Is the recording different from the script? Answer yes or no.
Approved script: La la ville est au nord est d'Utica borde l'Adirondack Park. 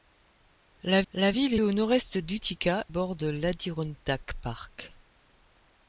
no